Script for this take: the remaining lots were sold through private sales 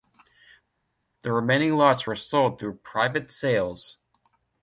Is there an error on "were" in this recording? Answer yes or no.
no